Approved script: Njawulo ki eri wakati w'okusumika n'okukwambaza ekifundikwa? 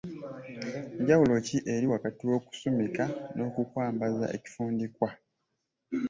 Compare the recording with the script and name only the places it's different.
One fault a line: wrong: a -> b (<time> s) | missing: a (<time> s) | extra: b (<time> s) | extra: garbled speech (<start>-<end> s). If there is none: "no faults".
no faults